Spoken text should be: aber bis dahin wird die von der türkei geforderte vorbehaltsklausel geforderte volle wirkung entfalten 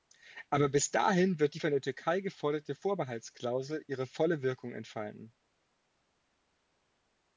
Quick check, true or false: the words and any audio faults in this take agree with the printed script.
false